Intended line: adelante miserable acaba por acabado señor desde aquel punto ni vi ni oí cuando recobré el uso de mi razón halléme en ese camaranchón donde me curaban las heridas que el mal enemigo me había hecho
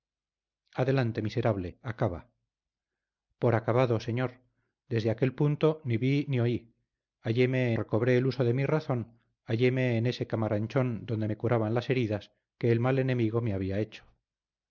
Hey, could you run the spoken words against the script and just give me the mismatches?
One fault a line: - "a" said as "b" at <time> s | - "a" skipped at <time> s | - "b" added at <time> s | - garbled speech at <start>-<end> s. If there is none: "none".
- "cuando" said as "halléme" at 7.2 s